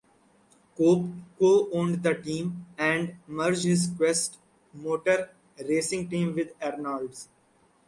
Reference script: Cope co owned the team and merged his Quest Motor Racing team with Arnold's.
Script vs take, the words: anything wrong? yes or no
no